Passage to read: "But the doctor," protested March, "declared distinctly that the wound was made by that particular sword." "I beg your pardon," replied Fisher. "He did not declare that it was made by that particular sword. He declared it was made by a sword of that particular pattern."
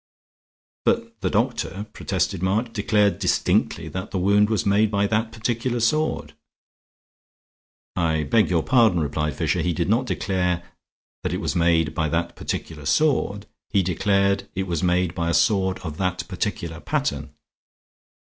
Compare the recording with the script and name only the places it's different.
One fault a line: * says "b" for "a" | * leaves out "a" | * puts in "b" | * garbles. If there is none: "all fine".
all fine